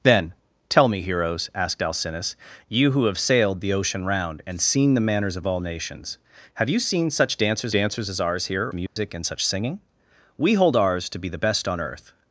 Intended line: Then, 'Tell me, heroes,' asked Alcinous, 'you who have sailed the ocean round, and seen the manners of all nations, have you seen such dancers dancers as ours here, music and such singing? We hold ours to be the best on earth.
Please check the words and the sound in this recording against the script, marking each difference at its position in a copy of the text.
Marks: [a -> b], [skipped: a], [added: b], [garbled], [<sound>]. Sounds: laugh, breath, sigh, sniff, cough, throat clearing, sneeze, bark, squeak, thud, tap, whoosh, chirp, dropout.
Then, 'Tell me, heroes,' asked Alcinous, 'you who have sailed the ocean round, and seen the manners of all nations, have you seen such dancers dancers as ours here, music [dropout] and such singing? We hold ours to be the best on earth.